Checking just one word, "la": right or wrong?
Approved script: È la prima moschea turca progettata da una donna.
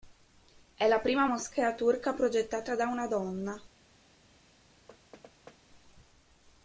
right